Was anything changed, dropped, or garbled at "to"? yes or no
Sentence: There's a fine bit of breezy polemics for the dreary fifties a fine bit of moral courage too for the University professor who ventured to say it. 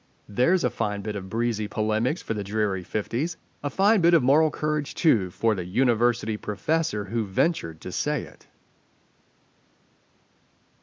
no